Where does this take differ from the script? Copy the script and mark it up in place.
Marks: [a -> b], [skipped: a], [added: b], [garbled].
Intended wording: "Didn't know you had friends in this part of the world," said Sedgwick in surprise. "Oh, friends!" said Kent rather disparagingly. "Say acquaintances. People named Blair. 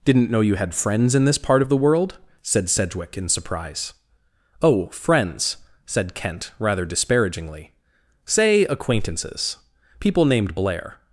"Didn't know you had friends in this part of the world," said Sedgwick in surprise. "Oh, friends!" said Kent rather disparagingly. "Say acquaintances. People named Blair.